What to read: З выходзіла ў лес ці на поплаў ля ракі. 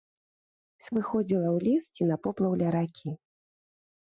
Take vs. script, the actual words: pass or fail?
pass